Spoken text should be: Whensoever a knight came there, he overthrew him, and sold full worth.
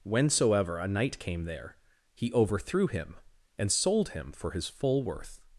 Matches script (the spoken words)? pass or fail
fail